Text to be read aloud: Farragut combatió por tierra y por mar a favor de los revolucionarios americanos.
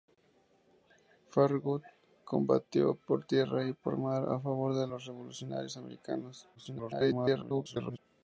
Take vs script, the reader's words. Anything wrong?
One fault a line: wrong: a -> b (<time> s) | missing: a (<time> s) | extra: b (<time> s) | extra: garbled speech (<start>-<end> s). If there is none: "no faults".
extra: garbled speech (6.6-8.0 s)